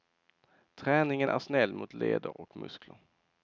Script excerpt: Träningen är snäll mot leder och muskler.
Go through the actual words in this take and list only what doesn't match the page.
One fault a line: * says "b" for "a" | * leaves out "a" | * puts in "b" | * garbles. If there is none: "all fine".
all fine